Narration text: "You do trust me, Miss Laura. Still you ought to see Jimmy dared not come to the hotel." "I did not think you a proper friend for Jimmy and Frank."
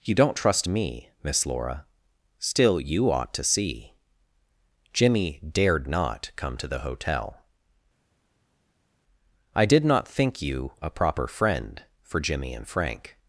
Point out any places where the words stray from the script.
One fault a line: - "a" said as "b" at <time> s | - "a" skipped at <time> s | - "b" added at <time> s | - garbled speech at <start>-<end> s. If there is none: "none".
- "do" said as "don't" at 0.1 s